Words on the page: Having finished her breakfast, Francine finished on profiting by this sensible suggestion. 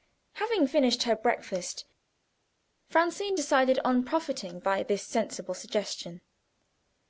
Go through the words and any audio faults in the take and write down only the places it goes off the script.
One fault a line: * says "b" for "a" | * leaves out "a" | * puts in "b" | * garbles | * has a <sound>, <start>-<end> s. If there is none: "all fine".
* says "decided" for "finished"